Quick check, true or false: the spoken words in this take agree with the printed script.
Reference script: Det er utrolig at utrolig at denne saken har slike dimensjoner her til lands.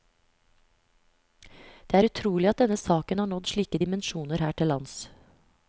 false